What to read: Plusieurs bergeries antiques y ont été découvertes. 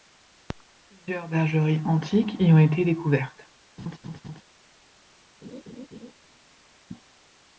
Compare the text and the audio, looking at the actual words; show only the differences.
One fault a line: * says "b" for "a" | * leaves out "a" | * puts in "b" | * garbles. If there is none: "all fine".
all fine